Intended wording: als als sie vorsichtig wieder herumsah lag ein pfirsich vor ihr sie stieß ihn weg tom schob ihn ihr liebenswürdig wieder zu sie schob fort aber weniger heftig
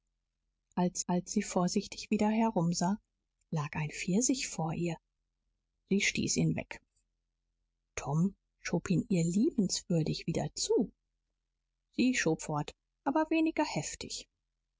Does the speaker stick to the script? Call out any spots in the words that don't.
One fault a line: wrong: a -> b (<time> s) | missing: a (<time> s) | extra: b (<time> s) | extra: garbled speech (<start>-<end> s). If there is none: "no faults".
no faults